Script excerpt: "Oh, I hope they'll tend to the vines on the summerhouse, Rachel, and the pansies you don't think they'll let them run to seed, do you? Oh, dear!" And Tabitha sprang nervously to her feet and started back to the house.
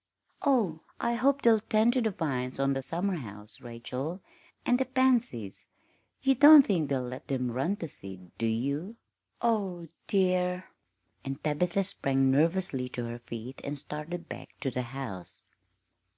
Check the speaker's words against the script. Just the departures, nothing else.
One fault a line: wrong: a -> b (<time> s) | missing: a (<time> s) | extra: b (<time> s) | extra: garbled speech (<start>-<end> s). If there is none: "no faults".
no faults